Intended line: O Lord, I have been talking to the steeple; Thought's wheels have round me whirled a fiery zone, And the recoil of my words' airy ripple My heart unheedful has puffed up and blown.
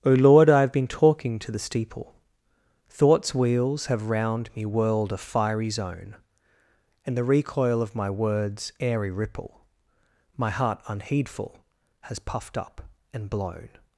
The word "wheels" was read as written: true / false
true